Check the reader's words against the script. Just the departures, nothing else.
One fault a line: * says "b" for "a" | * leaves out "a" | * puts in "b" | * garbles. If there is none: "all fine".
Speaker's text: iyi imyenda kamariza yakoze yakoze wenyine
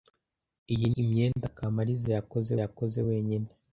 all fine